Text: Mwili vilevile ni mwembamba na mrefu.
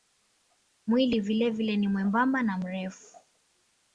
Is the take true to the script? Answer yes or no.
yes